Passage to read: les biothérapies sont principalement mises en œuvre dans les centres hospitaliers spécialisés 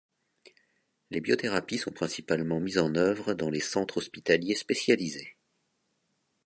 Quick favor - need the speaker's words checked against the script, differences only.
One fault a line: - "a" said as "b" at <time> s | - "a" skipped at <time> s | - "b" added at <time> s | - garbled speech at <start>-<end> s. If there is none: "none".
none